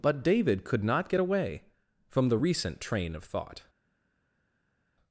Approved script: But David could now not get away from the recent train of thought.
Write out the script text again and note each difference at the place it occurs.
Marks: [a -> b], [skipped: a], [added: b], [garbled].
But David could [skipped: now] not get away from the recent train of thought.